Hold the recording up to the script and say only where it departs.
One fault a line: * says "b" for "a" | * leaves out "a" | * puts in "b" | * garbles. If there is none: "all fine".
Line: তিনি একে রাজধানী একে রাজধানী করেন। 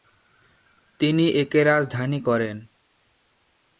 * leaves out "একে রাজধানী"